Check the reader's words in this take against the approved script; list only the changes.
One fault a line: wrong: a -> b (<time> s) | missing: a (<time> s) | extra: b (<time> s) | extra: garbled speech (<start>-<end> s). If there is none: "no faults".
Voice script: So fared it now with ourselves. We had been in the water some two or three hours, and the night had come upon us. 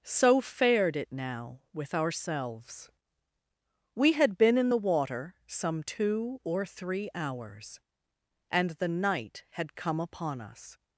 no faults